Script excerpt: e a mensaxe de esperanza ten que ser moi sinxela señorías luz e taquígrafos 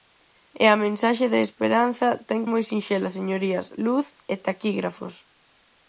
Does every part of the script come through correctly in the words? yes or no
no